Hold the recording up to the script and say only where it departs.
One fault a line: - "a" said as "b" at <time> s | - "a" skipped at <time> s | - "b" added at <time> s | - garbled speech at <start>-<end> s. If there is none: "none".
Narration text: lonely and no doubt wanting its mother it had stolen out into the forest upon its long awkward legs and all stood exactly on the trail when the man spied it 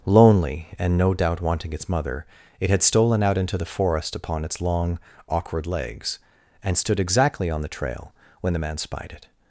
- "all" skipped at 6.8 s